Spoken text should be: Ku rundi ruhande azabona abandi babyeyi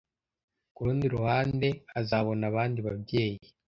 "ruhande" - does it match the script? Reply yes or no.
yes